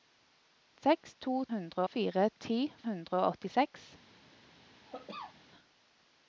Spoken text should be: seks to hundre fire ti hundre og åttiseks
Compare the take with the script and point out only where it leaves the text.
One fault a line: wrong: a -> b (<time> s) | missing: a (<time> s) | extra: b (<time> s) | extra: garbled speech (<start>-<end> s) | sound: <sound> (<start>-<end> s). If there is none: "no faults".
sound: cough (4.8-5.4 s)